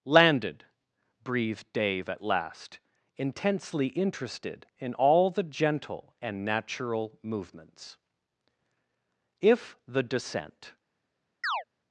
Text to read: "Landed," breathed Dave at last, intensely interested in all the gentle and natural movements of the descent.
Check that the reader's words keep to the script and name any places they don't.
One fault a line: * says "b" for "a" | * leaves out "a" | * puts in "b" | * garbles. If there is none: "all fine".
* says "if" for "of"